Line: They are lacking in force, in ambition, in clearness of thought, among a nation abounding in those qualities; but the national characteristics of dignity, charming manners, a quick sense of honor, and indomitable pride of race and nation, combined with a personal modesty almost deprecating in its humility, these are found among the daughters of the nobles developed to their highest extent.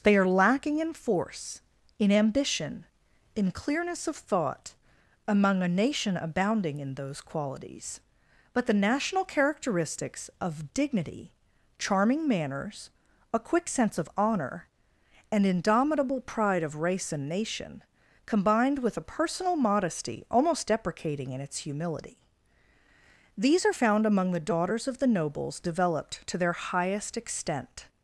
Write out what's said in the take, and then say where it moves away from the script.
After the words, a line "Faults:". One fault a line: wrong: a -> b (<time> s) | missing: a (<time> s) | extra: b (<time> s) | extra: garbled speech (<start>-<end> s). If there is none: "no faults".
They are lacking in force, in ambition, in clearness of thought, among a nation abounding in those qualities; but the national characteristics of dignity, charming manners, a quick sense of honor, and indomitable pride of race and nation, combined with a personal modesty almost deprecating in its humility, these are found among the daughters of the nobles developed to their highest extent.
Faults:
no faults